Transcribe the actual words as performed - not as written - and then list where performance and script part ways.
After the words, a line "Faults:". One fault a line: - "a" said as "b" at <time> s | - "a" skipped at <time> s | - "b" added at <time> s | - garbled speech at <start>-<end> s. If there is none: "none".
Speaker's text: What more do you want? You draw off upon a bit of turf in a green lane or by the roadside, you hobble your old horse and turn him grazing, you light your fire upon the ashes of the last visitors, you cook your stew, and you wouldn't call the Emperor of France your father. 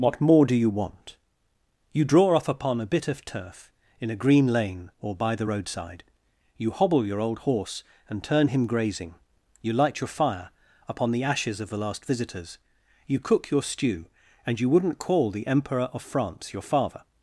What more do you want? You draw off upon a bit of turf in a green lane or by the roadside, you hobble your old horse and turn him grazing, you light your fire upon the ashes of the last visitors, you cook your stew, and you wouldn't call the Emperor of France your father.
Faults:
none